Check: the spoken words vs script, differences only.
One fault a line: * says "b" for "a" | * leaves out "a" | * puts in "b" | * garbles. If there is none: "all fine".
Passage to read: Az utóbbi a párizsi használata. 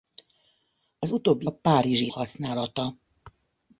all fine